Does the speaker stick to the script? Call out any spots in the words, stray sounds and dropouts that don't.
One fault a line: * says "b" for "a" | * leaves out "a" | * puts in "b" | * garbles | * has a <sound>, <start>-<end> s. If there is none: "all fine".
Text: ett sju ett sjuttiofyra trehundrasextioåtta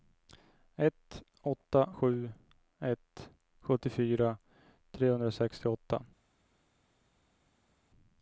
* puts in "åtta"